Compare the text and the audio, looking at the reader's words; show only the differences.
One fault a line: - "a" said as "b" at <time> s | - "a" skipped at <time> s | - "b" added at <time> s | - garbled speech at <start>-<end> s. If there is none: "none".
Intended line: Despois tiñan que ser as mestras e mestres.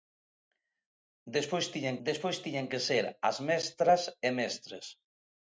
- "despois tiñan" added at 2.1 s